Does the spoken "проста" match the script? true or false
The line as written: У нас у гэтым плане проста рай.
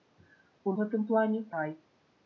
false